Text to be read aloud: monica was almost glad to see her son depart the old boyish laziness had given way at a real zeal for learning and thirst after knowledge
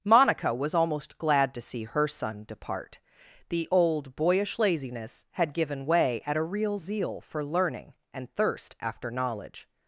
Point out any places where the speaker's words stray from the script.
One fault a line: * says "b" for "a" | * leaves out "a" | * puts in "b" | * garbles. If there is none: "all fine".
all fine